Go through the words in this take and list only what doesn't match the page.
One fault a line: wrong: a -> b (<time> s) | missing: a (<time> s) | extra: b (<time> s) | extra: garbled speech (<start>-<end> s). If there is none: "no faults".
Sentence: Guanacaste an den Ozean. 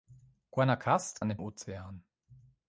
no faults